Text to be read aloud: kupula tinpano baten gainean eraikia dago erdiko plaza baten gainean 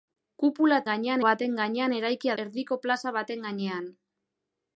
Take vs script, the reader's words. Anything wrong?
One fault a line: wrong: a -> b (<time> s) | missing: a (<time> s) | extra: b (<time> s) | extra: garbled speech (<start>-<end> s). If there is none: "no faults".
wrong: tinpano -> gainean (0.9 s)
missing: dago (2.4 s)